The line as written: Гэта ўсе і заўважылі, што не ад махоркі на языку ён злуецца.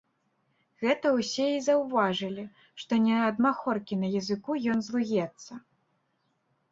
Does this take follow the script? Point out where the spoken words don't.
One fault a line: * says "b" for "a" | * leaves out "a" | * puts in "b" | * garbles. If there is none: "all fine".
all fine